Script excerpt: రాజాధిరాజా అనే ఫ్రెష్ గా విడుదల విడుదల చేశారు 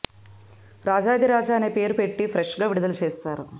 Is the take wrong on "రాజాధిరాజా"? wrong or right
right